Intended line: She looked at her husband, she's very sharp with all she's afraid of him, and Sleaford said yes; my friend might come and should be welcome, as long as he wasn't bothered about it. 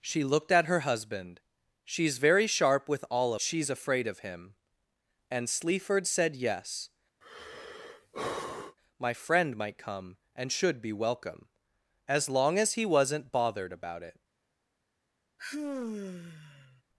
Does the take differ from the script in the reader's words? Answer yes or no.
no